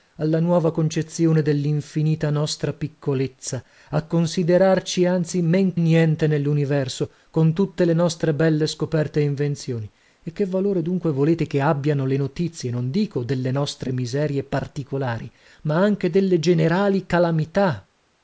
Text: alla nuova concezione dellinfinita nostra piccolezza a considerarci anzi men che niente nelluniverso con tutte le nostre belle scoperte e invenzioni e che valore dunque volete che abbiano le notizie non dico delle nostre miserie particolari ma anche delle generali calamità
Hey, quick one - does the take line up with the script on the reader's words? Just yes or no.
no